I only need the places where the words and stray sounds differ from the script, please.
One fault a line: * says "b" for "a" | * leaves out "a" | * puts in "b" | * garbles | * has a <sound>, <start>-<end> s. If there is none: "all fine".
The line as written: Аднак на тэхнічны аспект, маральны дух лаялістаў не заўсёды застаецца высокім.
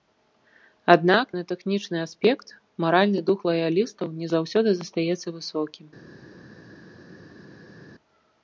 all fine